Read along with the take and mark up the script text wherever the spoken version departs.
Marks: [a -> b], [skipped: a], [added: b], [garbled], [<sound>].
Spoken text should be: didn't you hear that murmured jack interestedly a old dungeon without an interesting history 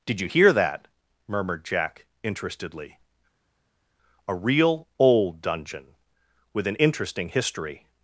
[didn't -> did] you hear that murmured jack interestedly a [added: real] old dungeon [without -> with] an interesting history